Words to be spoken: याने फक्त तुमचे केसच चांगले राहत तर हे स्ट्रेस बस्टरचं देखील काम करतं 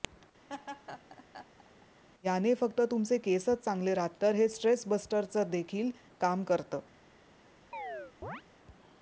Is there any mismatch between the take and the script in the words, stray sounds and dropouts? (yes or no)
yes